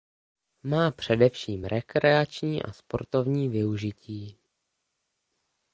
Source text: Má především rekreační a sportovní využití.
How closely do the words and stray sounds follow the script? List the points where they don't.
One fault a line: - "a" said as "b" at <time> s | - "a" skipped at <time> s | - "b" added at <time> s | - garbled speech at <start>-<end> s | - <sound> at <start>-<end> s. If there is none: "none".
none